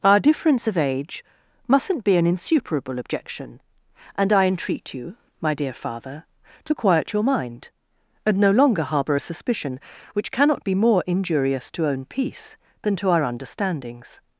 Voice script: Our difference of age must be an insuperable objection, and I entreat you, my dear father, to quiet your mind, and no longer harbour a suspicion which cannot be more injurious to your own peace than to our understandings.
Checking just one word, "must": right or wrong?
wrong